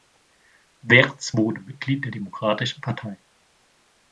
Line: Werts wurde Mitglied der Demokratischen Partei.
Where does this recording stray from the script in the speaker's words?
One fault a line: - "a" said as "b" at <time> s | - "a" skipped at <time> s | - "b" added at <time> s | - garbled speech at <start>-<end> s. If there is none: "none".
none